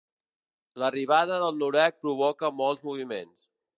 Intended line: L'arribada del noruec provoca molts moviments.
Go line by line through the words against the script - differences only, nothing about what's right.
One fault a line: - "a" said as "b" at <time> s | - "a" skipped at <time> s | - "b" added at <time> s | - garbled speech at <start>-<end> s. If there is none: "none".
none